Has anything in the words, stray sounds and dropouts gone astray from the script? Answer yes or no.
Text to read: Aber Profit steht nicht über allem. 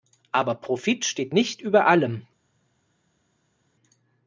no